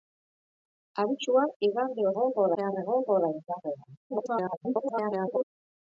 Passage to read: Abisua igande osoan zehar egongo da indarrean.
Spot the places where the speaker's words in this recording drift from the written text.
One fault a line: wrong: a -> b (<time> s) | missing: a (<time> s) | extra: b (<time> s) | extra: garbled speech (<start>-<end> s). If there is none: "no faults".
wrong: osoan -> egongo (2.2 s)
extra: garbled speech (4.1-5.4 s)